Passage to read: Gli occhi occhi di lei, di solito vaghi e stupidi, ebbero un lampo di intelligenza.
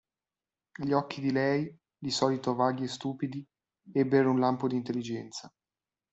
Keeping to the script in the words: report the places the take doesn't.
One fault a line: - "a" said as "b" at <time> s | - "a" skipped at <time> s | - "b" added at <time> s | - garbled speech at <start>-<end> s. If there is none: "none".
- "occhi" skipped at 1.2 s